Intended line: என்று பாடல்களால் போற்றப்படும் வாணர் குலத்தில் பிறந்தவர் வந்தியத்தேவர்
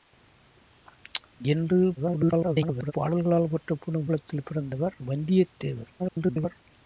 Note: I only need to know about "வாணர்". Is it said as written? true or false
false